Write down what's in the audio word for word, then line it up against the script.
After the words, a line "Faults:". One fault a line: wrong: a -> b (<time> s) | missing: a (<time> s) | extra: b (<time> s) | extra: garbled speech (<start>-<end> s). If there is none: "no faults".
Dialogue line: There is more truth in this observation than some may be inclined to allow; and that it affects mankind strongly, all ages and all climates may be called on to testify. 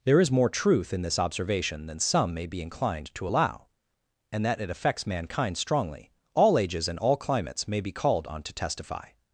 There is more truth in this observation than some may be inclined to allow; and that it affects mankind strongly, all ages and all climates may be called on to testify.
Faults:
no faults